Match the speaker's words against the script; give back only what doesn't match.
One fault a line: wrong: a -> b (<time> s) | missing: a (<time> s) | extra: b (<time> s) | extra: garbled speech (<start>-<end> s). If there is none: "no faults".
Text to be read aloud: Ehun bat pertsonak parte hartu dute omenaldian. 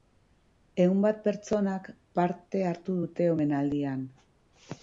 no faults